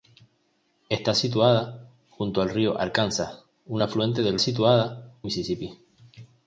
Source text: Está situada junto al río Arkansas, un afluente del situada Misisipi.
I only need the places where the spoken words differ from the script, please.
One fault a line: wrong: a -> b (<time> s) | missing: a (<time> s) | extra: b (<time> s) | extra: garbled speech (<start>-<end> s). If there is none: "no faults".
no faults